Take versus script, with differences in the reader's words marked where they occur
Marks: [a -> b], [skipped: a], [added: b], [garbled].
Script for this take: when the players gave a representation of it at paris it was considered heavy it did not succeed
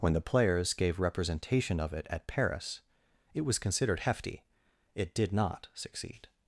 when the players gave [skipped: a] representation of it at paris it was considered [heavy -> hefty] it did not succeed